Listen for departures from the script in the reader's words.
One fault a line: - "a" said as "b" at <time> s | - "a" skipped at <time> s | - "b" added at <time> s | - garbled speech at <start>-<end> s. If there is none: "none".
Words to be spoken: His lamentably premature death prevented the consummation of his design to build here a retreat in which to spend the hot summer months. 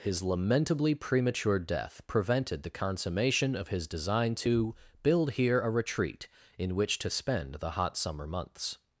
none